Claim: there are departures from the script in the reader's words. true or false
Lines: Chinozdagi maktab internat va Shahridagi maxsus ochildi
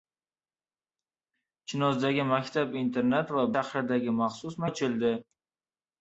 false